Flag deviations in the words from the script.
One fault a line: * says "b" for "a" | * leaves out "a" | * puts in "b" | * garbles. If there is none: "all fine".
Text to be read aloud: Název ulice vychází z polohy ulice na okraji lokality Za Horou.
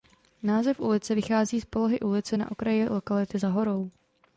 all fine